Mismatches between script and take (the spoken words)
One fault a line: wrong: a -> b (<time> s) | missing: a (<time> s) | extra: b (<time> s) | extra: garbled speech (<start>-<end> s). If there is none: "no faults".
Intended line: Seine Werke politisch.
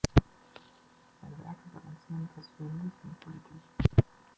extra: balancieren persönlich und (1.7 s)